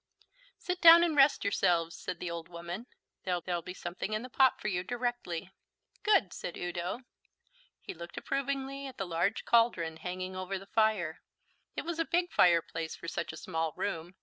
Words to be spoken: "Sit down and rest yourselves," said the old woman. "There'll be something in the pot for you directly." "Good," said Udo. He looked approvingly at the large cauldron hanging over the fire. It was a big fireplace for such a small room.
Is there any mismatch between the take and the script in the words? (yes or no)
yes